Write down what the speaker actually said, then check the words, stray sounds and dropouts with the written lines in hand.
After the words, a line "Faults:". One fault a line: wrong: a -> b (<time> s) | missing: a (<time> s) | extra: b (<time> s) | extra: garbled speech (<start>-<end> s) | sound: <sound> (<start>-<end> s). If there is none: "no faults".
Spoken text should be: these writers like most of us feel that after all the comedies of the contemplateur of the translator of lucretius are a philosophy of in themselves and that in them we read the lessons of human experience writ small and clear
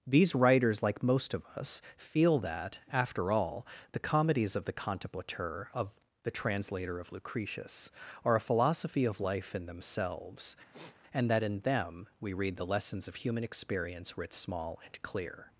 these writers like most of us feel that after all the comedies of the contemplateur of the translator of lucretius are a philosophy of life in themselves and that in them we read the lessons of human experience writ small and clear
Faults:
extra: life (9.2 s)
sound: sniff (10.7-11.0 s)